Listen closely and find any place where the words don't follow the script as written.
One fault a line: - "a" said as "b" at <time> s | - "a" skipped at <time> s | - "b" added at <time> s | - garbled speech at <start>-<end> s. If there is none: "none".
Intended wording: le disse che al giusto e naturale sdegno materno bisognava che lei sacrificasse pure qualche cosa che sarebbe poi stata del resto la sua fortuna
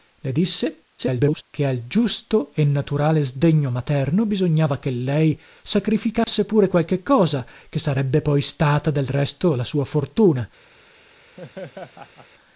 - garbled speech at 1.0-1.4 s